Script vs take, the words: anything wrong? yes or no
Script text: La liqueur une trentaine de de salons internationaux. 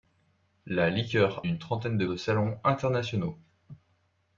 no